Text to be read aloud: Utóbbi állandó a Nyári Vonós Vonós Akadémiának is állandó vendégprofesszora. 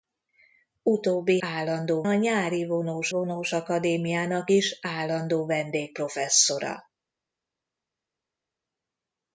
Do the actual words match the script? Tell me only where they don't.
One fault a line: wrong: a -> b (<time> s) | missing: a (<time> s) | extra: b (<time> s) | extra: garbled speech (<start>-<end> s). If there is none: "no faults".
no faults